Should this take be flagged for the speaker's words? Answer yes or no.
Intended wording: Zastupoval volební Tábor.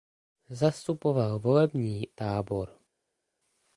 no